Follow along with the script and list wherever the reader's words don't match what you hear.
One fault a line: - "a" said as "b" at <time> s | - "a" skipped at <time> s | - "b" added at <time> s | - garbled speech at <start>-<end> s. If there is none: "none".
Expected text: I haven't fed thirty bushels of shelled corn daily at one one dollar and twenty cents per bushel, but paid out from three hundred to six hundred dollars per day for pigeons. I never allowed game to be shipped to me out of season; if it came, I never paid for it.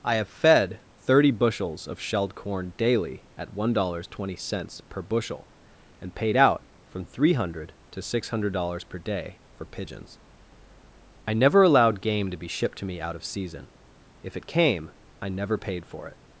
- "haven't" said as "have" at 0.1 s
- "one" skipped at 3.7 s
- "but" said as "and" at 6.0 s